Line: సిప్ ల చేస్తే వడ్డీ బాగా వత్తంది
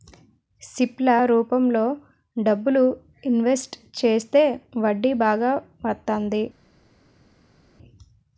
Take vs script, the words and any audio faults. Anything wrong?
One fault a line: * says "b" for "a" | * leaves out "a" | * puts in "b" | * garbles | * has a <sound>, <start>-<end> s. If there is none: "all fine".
* puts in "రూపంలో డబ్బులు ఇన్వెస్ట్"